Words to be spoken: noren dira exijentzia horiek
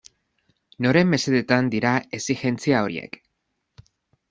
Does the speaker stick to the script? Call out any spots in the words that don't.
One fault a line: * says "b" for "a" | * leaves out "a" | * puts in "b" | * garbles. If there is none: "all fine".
* puts in "mesedetan"